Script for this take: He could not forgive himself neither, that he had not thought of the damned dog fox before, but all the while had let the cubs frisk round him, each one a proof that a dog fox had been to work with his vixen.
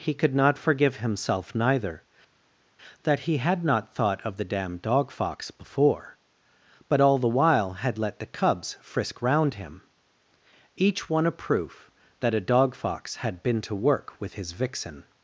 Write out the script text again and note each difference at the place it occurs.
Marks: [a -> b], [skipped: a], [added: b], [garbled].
He could not forgive himself neither, that he had not thought of the damned dog fox before, but all the while had let the cubs frisk round him, each one a proof that a dog fox had been to work with his vixen.